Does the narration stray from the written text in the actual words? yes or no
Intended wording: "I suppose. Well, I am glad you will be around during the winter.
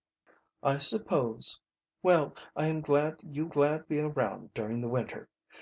yes